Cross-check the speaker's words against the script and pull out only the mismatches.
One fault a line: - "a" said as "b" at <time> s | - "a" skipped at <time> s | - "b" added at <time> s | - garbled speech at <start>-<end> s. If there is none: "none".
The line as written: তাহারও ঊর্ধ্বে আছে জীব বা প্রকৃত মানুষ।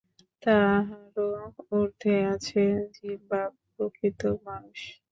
none